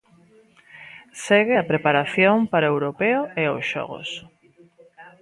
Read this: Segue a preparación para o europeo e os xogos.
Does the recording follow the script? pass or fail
pass